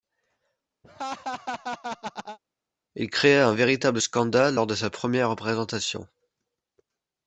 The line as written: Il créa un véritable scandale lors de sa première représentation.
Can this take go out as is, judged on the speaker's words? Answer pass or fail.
pass